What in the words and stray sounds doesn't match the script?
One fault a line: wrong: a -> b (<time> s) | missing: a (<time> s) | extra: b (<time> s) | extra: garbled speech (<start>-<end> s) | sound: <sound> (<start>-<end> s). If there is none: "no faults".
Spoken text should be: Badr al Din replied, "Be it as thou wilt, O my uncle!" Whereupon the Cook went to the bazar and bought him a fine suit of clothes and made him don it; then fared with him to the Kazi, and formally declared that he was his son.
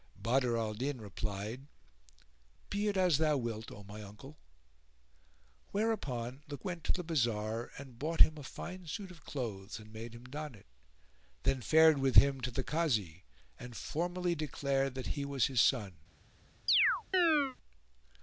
missing: Cook (6.6 s)
sound: chirp (16.7-17.6 s)